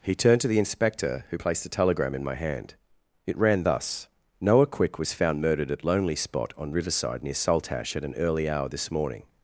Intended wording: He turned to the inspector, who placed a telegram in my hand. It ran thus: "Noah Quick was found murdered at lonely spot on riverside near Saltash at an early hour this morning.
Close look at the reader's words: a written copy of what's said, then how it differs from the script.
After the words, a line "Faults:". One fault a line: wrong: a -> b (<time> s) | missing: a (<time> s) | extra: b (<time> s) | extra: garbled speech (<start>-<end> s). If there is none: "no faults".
He turned to the inspector, who placed a telegram in my hand. It ran thus: "Noah Quick was found murdered at lonely spot on riverside near Saltash at an early hour this morning.
Faults:
no faults